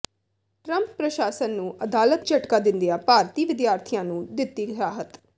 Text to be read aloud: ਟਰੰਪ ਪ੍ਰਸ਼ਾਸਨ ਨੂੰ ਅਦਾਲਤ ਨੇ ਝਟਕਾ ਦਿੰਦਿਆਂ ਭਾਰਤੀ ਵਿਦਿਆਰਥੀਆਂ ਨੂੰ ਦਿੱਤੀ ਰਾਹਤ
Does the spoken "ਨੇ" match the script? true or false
false